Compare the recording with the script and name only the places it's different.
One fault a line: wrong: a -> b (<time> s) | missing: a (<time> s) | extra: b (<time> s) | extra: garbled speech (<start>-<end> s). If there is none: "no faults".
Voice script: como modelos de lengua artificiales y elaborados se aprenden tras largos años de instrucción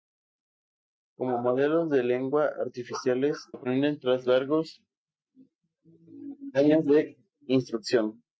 missing: y elaborados se (3.5 s)